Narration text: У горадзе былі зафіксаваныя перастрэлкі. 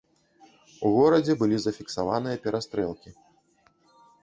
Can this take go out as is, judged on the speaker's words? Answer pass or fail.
pass